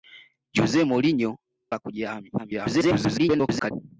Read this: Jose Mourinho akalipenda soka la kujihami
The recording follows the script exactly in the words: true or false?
false